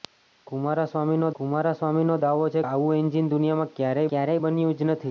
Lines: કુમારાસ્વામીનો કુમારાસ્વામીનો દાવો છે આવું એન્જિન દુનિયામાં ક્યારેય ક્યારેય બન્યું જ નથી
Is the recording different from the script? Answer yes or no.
no